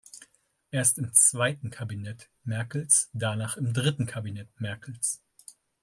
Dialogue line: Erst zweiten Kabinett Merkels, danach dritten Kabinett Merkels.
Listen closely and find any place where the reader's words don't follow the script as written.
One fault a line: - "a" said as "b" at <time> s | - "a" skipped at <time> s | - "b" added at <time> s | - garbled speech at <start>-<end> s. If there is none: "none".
- "im" added at 1.0 s
- "im" added at 3.6 s